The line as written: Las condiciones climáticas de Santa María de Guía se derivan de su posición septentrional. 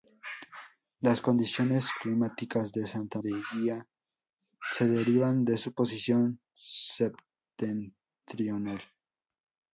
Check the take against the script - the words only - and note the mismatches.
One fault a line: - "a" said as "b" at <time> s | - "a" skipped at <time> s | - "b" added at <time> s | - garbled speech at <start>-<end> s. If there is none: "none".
- "María" skipped at 3.2 s